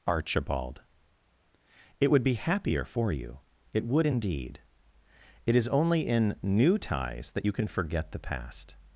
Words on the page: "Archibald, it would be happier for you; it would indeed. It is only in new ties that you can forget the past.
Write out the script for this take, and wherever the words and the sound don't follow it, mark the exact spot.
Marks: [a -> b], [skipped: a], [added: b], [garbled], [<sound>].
"Archibald, it would be happier for you; it would indeed. It is only in new ties that you can forget the past.